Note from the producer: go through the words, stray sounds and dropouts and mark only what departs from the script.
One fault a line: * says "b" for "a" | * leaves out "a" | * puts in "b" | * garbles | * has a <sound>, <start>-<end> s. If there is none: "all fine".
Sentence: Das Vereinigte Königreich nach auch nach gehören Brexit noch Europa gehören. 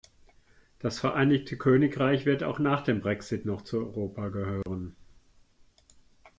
* says "wird" for "nach"
* says "dem" for "gehören"
* puts in "zu"
* has a dropout, 4.6-4.7 s